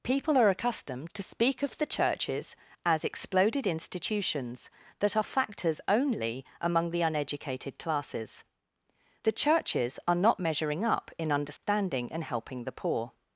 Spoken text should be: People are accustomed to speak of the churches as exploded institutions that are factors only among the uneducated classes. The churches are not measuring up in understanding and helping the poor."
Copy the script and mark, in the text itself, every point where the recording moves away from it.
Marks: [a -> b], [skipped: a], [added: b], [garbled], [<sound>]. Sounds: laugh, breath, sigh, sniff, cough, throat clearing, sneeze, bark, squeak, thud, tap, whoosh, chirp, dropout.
People are accustomed to speak of the churches as exploded institutions that are factors only among the uneducated classes. The churches are not measuring up in understanding [dropout] and helping the poor."